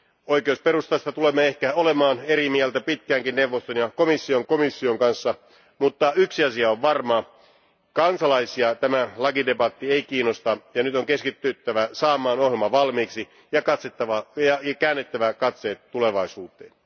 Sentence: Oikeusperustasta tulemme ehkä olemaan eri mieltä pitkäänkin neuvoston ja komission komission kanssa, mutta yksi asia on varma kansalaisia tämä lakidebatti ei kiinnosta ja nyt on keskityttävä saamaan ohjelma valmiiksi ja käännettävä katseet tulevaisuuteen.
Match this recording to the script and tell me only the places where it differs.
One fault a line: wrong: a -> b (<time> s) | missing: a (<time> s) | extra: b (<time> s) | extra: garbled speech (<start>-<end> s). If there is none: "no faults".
no faults